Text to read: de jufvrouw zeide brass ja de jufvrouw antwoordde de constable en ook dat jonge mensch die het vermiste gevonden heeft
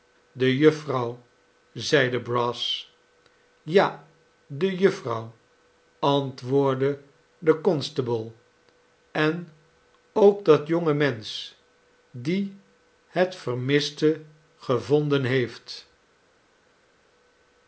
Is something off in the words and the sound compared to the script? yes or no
no